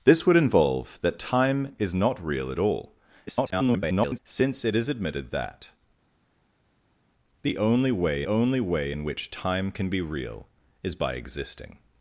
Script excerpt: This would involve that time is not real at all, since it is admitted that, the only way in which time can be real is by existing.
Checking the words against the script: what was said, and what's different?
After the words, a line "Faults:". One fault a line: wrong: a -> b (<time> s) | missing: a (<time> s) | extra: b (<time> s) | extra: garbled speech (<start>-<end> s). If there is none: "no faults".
This would involve that time is not real at all, [garbled] since it is admitted that, the only way only way in which time can be real is by existing.
Faults:
extra: garbled speech (3.3-4.2 s)
extra: only way (8.3 s)